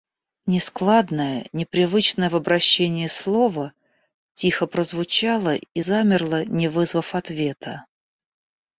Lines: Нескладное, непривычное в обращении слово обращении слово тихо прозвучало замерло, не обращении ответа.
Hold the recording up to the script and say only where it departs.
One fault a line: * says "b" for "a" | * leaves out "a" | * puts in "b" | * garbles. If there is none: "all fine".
* leaves out "обращении слово"
* puts in "и"
* says "вызвав" for "обращении"